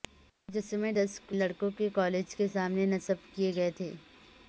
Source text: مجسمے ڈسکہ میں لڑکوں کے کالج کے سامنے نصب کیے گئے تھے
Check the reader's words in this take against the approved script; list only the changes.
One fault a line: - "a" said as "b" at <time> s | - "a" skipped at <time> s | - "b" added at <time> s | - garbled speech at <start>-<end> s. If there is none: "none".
- "میں" skipped at 1.3 s